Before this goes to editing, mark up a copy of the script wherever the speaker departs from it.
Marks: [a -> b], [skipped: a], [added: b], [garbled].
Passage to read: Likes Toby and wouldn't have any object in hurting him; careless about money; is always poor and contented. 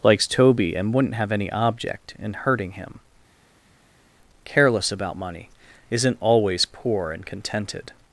Likes Toby and wouldn't have any object in hurting him; careless about money; [is -> isn't] always poor and contented.